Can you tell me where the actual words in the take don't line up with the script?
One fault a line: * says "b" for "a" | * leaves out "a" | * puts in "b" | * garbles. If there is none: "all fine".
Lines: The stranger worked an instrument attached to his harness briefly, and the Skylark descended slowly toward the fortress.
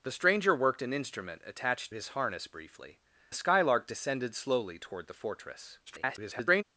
* leaves out "to"
* leaves out "and"
* garbles